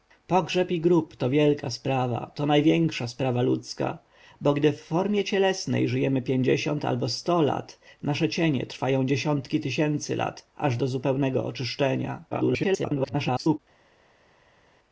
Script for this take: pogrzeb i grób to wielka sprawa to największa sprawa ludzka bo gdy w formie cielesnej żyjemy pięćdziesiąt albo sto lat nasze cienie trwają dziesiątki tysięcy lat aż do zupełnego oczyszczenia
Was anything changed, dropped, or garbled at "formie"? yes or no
no